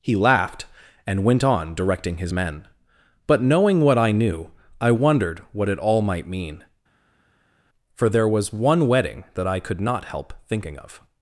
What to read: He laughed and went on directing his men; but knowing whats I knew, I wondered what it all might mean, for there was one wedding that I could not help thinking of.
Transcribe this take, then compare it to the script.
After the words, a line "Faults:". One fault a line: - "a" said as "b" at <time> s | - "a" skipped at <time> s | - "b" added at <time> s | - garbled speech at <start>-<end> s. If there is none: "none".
He laughed and went on directing his men; but knowing what I knew, I wondered what it all might mean, for there was one wedding that I could not help thinking of.
Faults:
- "whats" said as "what" at 3.8 s